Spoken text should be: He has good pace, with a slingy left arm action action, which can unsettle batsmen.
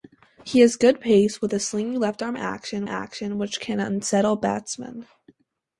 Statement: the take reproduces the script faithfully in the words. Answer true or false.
true